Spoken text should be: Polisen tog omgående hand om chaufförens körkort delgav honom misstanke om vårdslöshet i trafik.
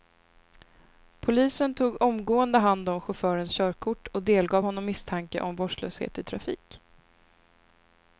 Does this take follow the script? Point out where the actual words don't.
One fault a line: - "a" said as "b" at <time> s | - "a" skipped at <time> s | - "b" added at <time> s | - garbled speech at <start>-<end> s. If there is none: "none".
- "och" added at 4.1 s